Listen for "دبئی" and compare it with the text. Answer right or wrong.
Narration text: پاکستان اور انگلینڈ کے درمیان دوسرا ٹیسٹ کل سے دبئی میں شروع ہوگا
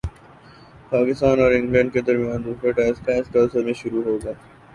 wrong